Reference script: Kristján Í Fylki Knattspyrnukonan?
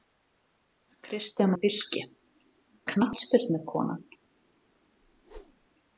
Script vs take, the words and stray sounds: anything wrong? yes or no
yes